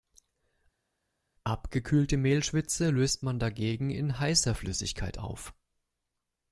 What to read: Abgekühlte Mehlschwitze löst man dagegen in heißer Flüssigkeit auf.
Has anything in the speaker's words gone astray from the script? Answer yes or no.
no